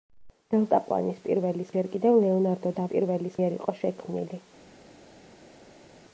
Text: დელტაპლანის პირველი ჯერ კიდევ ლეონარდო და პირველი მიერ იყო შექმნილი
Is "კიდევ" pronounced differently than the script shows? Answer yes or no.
no